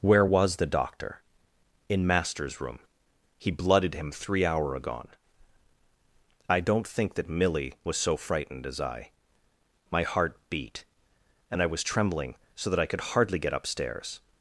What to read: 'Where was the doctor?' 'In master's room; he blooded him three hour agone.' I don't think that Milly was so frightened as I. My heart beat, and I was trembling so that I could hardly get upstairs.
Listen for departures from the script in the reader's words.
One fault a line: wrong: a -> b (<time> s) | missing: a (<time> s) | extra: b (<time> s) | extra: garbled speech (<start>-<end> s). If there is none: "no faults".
no faults